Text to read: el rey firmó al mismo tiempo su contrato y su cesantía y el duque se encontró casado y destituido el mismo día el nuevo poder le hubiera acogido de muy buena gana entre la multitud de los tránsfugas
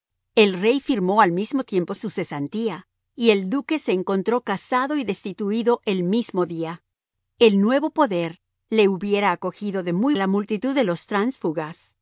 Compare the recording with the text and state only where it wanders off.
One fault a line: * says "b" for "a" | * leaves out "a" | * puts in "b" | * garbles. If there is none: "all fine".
* leaves out "su contrato"
* leaves out "buena gana entre"